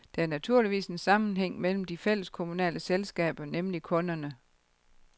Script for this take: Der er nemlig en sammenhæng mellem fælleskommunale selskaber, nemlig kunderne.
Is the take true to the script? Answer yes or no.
no